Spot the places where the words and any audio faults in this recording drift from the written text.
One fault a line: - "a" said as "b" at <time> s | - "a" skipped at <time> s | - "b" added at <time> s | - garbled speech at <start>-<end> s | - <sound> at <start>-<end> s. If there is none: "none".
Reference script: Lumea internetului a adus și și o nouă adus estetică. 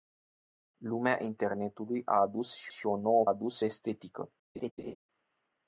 - laugh at 4.5-5.0 s